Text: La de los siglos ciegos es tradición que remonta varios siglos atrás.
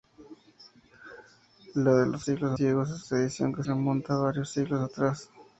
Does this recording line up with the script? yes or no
yes